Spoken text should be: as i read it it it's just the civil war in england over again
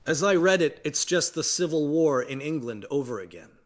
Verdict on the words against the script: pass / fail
fail